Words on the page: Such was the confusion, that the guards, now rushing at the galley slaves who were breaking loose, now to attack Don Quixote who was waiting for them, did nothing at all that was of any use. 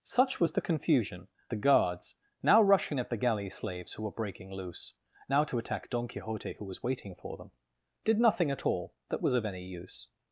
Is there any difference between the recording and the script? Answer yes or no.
yes